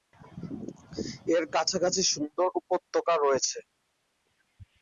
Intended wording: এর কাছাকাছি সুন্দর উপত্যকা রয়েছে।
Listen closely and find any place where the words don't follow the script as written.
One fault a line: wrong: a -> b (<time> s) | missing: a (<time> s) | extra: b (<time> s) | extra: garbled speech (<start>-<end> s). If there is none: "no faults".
no faults